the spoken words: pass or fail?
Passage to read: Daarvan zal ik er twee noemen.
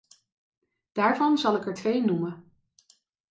pass